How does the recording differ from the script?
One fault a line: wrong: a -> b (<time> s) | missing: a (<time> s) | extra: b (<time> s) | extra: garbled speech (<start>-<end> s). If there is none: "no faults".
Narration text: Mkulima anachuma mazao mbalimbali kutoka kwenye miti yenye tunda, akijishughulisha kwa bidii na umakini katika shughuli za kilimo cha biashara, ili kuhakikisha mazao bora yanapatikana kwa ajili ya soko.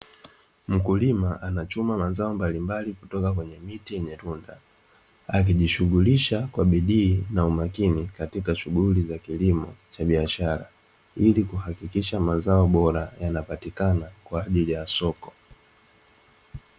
no faults